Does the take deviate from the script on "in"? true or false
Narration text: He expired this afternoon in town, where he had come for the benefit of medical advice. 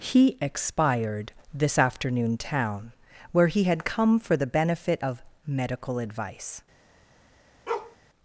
true